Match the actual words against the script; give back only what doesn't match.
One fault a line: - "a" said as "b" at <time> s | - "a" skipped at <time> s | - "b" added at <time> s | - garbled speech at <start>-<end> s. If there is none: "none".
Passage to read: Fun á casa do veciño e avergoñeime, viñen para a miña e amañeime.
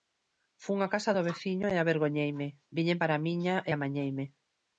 none